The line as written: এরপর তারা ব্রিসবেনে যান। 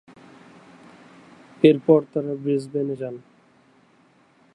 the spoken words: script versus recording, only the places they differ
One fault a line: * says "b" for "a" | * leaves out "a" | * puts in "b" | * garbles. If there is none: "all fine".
all fine